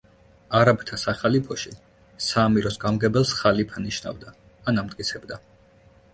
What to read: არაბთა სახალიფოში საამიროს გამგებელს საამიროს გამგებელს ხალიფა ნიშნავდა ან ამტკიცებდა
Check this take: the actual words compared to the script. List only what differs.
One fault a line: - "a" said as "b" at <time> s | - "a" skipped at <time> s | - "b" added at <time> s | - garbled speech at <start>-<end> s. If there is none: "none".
- "საამიროს გამგებელს" skipped at 3.3 s